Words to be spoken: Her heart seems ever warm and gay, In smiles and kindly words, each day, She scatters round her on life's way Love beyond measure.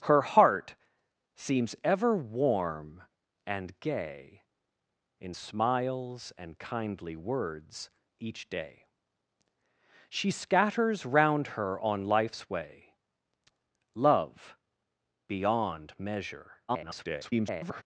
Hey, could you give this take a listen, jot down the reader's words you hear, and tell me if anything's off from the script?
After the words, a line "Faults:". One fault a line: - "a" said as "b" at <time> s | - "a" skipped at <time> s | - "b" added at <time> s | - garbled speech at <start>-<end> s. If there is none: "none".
Her heart seems ever warm and gay, In smiles and kindly words, each day, She scatters round her on life's way Love beyond measure. [garbled]
Faults:
- garbled speech at 16.7-17.8 s